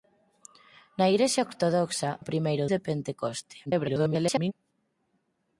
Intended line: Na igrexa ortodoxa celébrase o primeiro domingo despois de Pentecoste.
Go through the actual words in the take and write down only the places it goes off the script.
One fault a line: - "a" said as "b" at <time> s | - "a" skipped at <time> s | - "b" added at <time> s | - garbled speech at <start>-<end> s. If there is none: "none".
- "celébrase" skipped at 2.1 s
- "domingo despois" skipped at 2.7 s
- garbled speech at 3.7-4.5 s